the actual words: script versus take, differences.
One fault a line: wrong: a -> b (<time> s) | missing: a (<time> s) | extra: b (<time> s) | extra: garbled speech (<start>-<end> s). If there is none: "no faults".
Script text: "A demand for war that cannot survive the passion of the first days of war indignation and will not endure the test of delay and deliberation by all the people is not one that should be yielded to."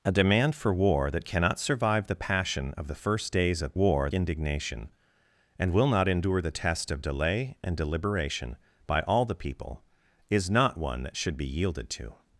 no faults